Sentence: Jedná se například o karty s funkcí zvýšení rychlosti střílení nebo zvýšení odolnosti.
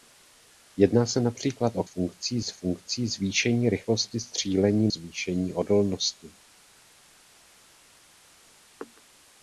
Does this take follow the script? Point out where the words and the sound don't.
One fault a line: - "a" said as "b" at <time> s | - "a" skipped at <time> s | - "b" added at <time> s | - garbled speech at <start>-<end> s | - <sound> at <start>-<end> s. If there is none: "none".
- "karty" said as "funkcí" at 1.8 s
- "nebo" skipped at 4.9 s